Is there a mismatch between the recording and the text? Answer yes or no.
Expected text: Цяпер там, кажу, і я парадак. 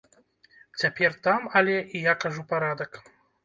yes